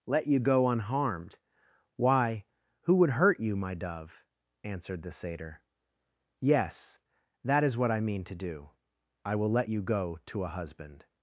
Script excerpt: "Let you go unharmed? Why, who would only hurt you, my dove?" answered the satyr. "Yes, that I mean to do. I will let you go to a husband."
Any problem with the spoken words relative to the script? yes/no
yes